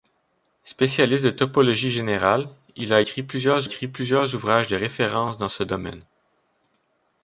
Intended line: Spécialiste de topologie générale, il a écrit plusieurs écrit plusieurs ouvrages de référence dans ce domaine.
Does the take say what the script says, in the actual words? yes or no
yes